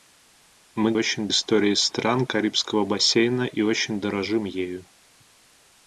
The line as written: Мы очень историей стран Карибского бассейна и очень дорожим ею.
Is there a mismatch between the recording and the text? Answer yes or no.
no